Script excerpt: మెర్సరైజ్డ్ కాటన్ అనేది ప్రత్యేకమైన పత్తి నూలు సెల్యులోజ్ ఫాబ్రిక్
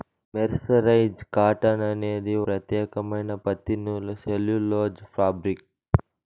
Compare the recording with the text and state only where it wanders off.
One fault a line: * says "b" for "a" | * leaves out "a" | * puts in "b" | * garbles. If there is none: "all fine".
all fine